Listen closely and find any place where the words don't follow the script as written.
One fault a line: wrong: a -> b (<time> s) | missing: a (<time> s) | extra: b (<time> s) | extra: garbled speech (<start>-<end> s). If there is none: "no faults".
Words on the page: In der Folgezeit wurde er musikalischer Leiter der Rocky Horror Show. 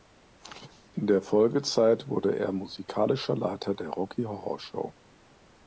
no faults